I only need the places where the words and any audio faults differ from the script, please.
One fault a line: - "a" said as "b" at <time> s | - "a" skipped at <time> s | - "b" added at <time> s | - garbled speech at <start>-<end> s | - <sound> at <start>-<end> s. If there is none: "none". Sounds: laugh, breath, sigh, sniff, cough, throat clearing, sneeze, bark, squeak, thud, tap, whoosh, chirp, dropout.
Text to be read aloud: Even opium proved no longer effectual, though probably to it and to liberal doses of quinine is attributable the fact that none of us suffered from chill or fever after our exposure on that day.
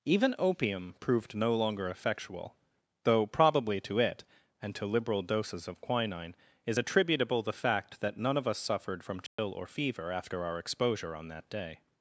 - dropout at 9.3-9.4 s